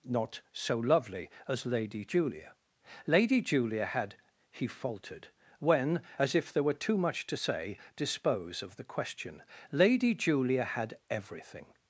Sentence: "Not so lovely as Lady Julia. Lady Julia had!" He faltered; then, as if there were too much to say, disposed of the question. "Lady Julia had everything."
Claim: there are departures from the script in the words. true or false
true